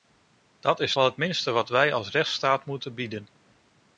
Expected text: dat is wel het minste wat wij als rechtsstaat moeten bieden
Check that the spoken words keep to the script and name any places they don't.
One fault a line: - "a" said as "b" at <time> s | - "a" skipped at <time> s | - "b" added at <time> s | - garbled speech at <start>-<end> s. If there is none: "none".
none